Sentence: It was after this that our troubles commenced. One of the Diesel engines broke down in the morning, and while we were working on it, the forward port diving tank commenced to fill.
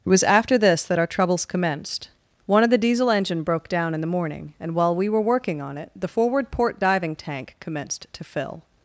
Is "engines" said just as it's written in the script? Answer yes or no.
no